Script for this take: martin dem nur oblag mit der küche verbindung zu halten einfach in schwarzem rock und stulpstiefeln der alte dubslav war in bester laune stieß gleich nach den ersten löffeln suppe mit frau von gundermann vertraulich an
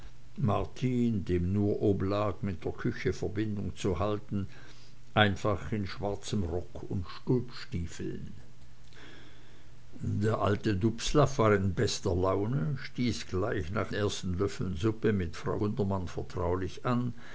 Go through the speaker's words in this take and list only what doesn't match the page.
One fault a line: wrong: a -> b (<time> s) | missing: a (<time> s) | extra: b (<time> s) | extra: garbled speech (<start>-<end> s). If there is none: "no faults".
missing: den (13.9 s)
missing: von (15.6 s)